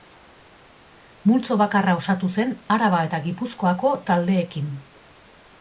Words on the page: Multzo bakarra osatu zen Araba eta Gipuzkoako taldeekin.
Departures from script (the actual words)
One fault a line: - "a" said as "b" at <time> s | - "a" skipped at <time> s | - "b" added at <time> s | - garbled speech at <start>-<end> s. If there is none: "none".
none